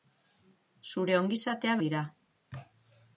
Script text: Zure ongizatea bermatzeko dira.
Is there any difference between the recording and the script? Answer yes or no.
yes